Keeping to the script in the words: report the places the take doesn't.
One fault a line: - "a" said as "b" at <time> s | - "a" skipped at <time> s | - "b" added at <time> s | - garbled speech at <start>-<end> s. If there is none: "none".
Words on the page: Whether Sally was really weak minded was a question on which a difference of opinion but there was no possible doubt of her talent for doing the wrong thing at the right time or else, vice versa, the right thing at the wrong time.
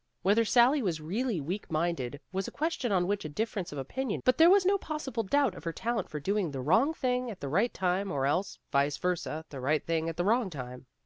none